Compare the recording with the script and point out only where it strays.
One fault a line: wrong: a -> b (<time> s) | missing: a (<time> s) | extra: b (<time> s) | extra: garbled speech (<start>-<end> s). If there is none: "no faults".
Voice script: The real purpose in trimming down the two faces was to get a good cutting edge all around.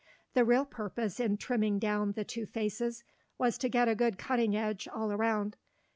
no faults